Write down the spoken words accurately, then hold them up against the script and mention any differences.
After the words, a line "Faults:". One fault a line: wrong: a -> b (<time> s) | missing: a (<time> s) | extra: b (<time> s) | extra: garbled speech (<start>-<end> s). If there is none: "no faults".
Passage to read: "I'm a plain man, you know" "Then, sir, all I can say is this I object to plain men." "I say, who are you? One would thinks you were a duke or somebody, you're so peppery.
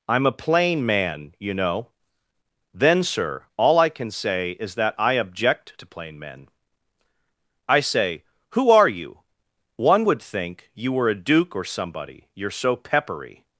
"I'm a plain man, you know" "Then, sir, all I can say is that I object to plain men." "I say, who are you? One would think you were a duke or somebody, you're so peppery.
Faults:
wrong: this -> that (4.8 s)
wrong: thinks -> think (10.2 s)